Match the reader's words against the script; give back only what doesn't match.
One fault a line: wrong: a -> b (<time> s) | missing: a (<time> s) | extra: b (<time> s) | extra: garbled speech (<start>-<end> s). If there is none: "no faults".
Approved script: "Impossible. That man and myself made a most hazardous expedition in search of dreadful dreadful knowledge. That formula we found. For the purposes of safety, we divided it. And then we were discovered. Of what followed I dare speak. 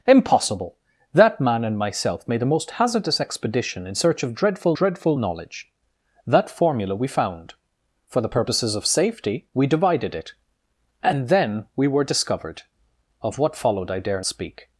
no faults